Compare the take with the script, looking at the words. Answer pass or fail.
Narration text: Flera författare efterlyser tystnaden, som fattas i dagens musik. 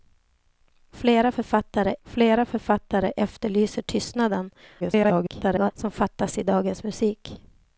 fail